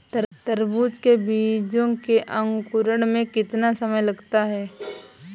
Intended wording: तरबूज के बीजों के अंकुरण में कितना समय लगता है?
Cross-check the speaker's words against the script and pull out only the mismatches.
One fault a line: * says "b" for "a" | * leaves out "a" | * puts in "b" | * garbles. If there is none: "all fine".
all fine